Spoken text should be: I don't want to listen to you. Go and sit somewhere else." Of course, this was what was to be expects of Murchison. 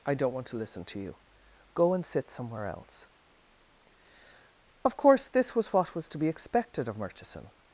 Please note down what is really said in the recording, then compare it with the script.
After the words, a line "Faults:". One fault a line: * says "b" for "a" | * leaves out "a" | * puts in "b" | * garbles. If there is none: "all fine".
I don't want to listen to you. Go and sit somewhere else." Of course, this was what was to be expected of Murchison.
Faults:
* says "expected" for "expects"